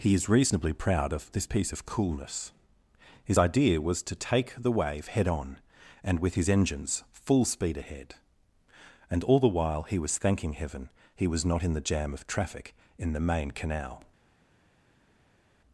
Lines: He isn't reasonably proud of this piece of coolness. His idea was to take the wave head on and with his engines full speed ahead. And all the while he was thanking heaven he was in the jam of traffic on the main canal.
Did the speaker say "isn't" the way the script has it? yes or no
no